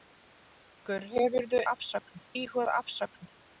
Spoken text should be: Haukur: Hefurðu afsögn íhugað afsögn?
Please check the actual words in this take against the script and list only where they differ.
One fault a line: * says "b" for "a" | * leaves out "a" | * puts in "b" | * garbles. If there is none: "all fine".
all fine